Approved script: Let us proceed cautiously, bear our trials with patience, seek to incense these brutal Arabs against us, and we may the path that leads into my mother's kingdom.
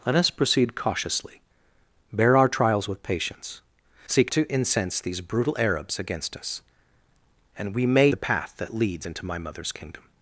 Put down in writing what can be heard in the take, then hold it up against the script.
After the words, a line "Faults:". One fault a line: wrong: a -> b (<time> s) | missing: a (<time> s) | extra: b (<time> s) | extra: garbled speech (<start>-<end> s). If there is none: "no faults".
Let us proceed cautiously, bear our trials with patience, seek to incense these brutal Arabs against us, and we may the path that leads into my mother's kingdom.
Faults:
no faults